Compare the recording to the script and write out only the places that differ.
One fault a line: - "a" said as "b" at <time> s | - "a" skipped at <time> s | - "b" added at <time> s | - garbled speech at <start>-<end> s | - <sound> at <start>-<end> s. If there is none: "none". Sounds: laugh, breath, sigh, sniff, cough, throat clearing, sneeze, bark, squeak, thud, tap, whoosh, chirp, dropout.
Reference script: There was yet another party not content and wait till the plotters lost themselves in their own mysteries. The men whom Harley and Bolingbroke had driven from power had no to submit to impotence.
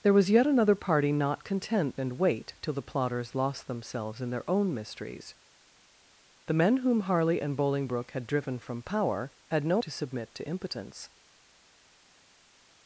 none